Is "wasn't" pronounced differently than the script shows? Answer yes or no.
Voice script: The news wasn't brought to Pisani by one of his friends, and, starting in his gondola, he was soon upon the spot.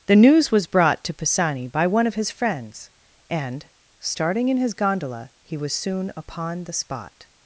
yes